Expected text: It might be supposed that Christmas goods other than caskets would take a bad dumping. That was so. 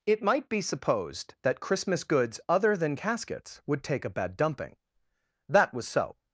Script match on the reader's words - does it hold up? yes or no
yes